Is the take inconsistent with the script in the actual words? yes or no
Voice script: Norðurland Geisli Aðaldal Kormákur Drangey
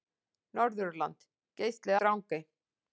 yes